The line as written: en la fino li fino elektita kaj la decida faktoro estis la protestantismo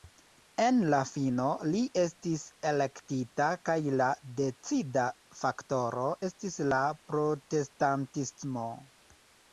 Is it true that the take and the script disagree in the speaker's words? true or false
true